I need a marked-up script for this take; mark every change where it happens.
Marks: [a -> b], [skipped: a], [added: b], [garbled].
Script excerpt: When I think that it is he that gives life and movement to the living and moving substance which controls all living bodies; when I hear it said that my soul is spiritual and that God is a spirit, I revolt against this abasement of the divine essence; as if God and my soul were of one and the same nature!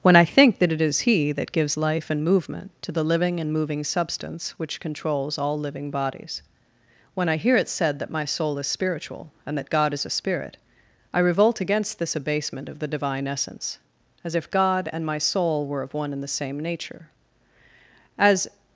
When I think that it is he that gives life and movement to the living and moving substance which controls all living bodies; when I hear it said that my soul is spiritual and that God is a spirit, I revolt against this abasement of the divine essence; as if God and my soul were of one and the same nature! [added: As]